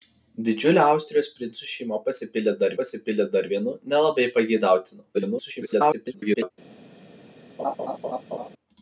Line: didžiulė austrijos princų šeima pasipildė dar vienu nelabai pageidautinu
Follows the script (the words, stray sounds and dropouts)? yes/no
no